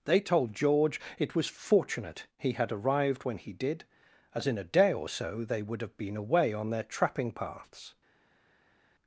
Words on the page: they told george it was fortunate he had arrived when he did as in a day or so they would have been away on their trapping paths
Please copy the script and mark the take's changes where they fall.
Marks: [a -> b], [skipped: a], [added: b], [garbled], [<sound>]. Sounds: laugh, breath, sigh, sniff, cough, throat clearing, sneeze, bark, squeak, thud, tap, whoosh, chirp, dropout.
they told george it was fortunate he had arrived when he did as in a day or so they would have been away on their trapping paths